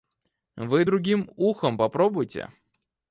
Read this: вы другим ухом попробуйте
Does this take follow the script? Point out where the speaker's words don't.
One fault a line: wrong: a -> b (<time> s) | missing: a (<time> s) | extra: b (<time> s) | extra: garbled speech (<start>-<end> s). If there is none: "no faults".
no faults